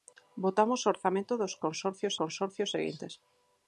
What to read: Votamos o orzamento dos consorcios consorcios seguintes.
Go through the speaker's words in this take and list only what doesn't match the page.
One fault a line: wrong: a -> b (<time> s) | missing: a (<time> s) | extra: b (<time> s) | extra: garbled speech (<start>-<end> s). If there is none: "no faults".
no faults